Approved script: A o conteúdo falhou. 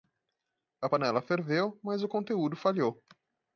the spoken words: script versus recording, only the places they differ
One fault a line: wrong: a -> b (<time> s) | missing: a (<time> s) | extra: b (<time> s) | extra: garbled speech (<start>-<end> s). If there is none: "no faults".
extra: panela ferveu mas (0.8 s)